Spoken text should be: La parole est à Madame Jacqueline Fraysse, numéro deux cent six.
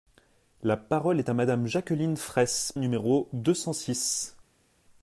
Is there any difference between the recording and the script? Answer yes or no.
no